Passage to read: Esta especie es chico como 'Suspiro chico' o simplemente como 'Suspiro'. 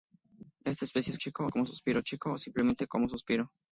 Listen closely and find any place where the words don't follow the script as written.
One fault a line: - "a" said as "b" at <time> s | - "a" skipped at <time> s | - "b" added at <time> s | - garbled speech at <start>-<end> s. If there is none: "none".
none